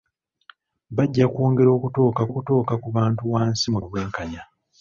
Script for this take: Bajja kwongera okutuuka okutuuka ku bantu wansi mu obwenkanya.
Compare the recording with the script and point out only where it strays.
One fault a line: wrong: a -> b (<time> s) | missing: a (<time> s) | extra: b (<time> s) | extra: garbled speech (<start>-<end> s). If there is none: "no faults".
no faults